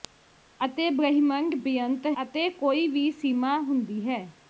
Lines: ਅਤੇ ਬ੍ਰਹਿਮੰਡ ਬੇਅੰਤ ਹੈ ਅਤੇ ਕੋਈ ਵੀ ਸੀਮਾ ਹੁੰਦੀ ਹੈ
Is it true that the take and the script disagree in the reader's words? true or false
true